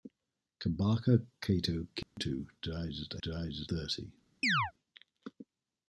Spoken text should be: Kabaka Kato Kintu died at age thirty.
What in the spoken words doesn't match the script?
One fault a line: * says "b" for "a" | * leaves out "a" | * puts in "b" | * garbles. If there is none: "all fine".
* says "died" for "age"